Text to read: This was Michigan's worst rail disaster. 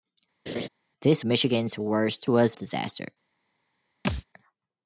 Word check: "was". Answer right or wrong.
wrong